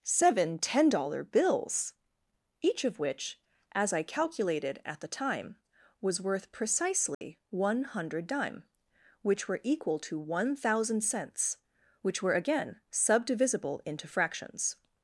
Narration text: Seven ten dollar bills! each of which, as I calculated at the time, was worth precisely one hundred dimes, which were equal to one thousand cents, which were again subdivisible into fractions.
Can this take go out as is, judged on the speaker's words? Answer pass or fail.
fail